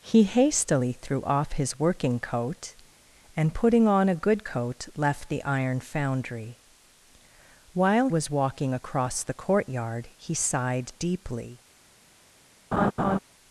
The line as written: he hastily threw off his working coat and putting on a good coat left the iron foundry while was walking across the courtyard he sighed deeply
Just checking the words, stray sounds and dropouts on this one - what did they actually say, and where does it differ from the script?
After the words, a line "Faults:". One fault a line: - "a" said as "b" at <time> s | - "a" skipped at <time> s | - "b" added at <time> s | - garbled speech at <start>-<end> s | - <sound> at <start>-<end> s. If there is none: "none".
he hastily threw off his working coat and putting on a good coat left the iron foundry while was walking across the courtyard he sighed deeply
Faults:
- laugh at 12.7-13.2 s